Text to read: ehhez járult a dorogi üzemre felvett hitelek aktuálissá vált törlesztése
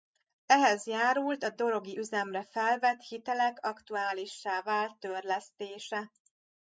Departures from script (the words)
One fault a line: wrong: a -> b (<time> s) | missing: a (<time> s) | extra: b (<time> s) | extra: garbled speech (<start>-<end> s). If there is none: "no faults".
no faults